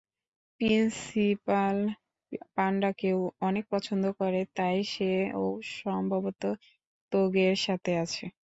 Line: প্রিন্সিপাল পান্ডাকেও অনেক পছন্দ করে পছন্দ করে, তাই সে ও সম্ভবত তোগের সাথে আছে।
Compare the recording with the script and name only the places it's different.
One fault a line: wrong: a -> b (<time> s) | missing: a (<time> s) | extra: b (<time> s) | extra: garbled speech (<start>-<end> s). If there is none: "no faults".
missing: পছন্দ করে (4.4 s)